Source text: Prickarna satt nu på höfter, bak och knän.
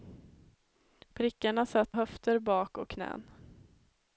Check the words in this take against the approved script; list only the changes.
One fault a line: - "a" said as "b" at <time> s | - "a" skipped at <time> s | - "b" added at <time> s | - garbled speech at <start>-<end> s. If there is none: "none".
- "nu på" skipped at 1.9 s